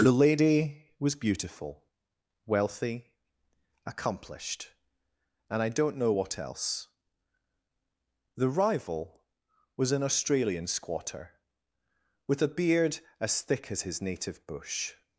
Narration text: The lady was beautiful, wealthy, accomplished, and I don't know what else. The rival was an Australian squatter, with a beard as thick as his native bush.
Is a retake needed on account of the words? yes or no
no